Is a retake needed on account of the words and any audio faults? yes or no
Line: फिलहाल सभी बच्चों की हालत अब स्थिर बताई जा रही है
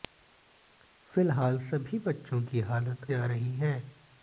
yes